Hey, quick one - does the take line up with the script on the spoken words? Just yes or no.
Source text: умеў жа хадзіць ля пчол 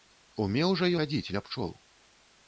yes